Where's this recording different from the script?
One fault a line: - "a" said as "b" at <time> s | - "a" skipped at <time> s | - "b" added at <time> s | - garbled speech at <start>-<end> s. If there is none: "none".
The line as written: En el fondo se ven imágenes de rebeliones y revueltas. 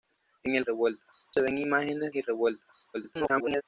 - "fondo" said as "revueltas" at 0.6 s
- "de rebeliones" skipped at 2.1 s
- garbled speech at 2.9-3.6 s